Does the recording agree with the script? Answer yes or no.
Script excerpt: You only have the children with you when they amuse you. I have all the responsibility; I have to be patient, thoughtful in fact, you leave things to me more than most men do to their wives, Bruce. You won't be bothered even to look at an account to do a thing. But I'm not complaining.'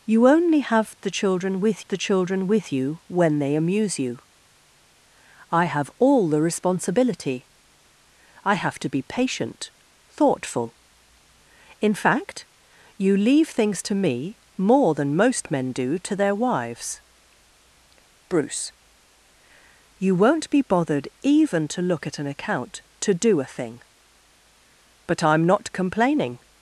no